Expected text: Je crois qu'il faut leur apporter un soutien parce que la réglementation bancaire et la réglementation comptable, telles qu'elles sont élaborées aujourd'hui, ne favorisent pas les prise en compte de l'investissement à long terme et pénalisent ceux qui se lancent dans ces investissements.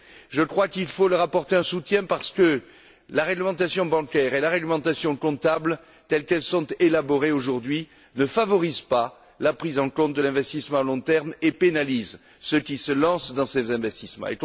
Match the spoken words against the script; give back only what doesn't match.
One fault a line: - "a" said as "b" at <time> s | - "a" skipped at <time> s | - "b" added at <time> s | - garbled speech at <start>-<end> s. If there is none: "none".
- "les" said as "la" at 9.4 s